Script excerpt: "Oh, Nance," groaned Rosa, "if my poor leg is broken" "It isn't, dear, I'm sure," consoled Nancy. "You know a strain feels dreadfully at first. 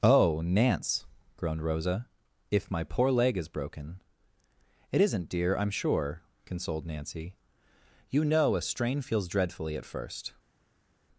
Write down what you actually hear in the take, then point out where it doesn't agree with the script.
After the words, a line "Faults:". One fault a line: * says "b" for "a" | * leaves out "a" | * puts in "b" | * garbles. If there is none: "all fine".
"Oh, Nance," groaned Rosa, "if my poor leg is broken" "It isn't, dear, I'm sure," consoled Nancy. "You know a strain feels dreadfully at first.
Faults:
all fine